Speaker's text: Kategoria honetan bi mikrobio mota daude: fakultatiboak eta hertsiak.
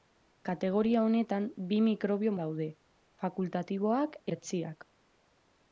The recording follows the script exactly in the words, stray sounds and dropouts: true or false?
false